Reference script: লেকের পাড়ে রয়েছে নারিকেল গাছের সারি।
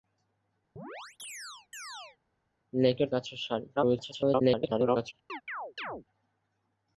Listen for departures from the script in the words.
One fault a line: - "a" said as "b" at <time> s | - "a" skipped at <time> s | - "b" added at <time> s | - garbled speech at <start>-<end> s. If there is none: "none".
- "পাড়ে রয়েছে নারিকেল" skipped at 3.1 s
- garbled speech at 3.8-5.1 s